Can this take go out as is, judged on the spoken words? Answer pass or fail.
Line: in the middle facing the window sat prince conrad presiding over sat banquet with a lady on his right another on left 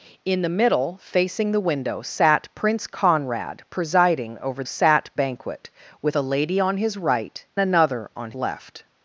pass